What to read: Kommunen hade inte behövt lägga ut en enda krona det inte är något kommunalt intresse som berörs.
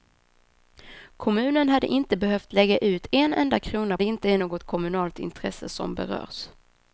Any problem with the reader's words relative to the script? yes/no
no